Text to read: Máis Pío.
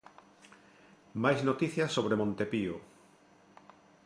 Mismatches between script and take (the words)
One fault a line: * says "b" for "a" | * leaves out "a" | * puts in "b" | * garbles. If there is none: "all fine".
* puts in "noticias sobre Monte"